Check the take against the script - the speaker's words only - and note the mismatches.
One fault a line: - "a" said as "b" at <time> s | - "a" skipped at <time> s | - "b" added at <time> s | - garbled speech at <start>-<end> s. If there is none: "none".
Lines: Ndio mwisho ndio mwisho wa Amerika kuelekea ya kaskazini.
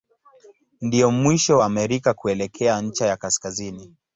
- "ndio mwisho" skipped at 1.6 s
- "ncha" added at 2.8 s